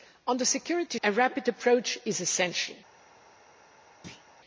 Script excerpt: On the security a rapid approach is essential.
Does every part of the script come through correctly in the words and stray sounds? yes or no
no